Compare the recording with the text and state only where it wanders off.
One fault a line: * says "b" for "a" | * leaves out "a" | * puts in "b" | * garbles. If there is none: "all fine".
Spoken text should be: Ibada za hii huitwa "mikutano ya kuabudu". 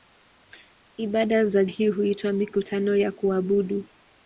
all fine